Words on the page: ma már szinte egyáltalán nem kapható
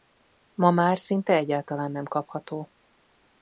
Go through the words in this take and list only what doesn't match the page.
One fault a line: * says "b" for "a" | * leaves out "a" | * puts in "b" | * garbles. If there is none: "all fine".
all fine